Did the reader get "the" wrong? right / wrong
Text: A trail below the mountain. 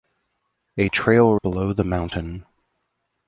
right